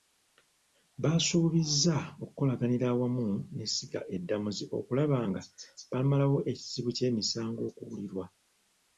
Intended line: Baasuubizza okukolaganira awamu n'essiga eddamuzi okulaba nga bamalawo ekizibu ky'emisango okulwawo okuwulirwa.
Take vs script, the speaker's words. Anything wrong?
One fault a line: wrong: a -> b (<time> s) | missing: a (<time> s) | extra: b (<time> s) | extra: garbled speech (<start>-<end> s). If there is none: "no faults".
missing: okulwawo (7.6 s)